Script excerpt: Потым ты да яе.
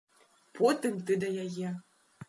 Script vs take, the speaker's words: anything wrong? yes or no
no